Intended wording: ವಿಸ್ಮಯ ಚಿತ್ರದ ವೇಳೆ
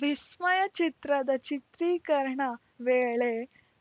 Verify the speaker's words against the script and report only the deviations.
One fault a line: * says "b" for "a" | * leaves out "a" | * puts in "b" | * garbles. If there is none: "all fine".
* puts in "ಚಿತ್ರೀಕರಣ"